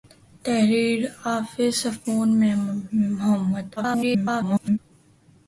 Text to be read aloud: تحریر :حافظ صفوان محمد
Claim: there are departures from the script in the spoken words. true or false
true